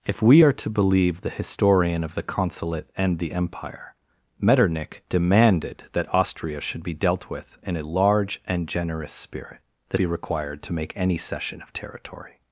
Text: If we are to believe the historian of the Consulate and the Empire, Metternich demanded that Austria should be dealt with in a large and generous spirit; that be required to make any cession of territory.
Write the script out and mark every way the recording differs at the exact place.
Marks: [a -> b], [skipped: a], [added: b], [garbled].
If we are to believe the historian of the Consulate and the Empire, Metternich demanded that Austria should be dealt with in a large and generous spirit; that be required to make any cession of territory.